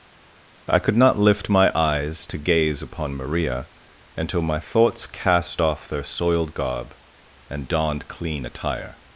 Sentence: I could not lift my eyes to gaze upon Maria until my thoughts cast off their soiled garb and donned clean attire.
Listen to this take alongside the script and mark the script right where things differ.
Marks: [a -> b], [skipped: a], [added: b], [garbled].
I could not lift my eyes to gaze upon Maria until my thoughts cast off their soiled garb and donned clean attire.